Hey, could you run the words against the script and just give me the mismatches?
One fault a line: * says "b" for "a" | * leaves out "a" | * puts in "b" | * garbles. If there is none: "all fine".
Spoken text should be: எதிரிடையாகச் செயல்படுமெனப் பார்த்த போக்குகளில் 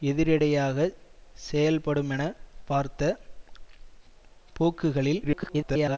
* garbles